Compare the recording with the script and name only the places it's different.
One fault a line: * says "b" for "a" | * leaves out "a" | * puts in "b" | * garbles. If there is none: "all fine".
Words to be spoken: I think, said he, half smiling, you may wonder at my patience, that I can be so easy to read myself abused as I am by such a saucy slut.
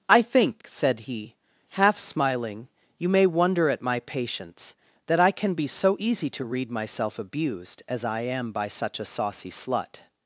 all fine